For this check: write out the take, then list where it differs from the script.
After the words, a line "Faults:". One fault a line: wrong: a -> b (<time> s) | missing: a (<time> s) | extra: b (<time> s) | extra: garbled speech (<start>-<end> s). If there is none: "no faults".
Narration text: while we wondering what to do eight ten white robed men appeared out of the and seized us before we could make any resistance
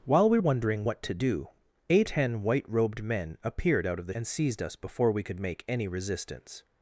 while we wondering what to do eight ten white robed men appeared out of the and seized us before we could make any resistance
Faults:
no faults